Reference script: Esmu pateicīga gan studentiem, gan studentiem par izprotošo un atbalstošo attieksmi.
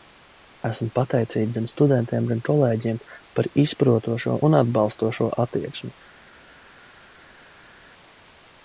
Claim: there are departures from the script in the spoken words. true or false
true